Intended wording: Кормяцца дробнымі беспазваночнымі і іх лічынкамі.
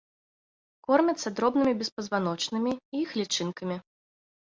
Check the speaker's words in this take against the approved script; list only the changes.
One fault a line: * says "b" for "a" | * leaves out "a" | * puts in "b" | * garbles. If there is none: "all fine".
all fine